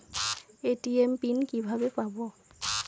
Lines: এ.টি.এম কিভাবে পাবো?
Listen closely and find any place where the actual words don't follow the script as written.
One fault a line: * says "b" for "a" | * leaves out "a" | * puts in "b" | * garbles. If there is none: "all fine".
* puts in "পিন"